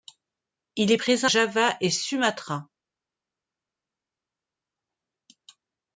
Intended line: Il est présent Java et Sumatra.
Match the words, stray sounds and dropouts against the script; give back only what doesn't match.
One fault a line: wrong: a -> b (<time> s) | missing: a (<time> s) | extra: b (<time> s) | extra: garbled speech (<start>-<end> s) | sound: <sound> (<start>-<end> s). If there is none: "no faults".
no faults